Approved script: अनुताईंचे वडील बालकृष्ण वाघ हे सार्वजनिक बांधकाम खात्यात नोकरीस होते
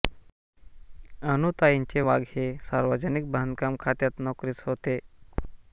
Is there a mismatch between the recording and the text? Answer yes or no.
yes